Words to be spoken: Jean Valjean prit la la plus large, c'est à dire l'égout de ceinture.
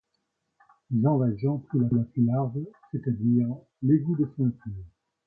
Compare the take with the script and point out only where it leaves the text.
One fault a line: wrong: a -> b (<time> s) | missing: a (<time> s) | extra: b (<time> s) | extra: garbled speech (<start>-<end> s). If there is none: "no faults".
no faults